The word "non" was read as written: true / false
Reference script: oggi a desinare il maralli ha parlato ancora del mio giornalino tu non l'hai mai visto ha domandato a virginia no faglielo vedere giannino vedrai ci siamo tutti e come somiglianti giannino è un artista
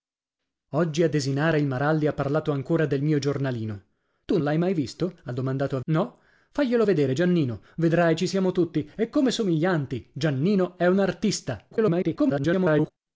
false